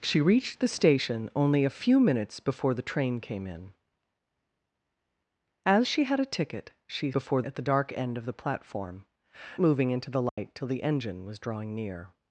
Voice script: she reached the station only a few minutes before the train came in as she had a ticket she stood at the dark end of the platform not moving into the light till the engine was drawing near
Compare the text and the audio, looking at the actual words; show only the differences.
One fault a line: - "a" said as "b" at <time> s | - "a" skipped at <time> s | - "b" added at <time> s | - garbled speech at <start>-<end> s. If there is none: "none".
- "stood" said as "before" at 7.1 s
- "not" skipped at 9.1 s